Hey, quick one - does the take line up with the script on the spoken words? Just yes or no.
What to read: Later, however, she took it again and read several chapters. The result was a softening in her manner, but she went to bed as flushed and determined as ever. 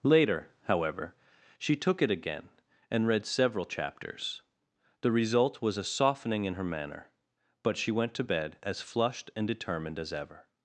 yes